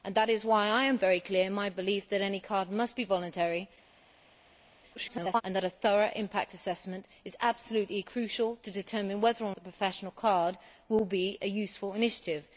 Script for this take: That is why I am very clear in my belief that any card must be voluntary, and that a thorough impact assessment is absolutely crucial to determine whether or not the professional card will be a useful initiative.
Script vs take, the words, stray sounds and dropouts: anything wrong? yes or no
yes